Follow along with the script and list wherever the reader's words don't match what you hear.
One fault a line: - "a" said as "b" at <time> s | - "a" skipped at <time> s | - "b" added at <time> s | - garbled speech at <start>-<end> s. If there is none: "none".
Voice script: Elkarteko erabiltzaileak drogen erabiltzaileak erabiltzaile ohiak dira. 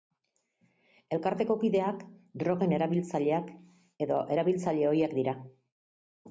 - "erabiltzaileak" said as "kideak" at 1.6 s
- "edo" added at 4.1 s